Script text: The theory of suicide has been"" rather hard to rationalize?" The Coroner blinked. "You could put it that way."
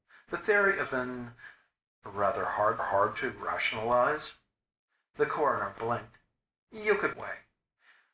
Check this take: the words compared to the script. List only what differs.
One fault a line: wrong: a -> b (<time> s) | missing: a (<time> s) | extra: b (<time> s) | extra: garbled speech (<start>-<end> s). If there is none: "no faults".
missing: suicide has (0.9 s)
extra: hard (2.8 s)
missing: put it that (7.2 s)